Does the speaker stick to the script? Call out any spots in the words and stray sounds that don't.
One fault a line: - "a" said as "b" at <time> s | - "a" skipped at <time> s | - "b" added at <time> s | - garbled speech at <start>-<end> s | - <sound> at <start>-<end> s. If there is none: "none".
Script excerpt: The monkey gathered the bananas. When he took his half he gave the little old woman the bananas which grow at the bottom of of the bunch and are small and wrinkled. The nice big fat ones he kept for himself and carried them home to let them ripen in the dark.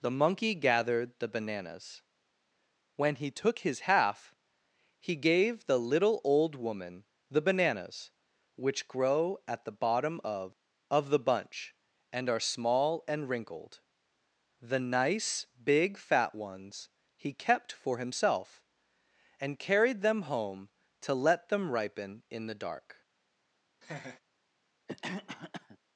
- laugh at 23.8-24.2 s
- cough at 24.9-25.8 s